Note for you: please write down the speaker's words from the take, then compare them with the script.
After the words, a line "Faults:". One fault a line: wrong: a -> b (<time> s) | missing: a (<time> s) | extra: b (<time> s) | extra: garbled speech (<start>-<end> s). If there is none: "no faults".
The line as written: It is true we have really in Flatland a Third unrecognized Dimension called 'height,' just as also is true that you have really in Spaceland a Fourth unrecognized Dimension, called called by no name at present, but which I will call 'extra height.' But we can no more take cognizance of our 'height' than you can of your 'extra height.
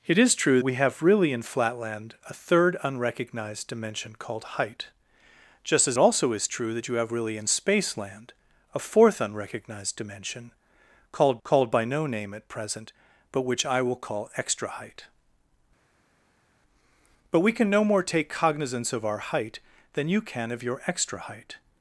It is true we have really in Flatland a Third unrecognized Dimension called 'height,' just as also is true that you have really in Spaceland a Fourth unrecognized Dimension, called called by no name at present, but which I will call 'extra height.' But we can no more take cognizance of our 'height' than you can of your 'extra height.
Faults:
no faults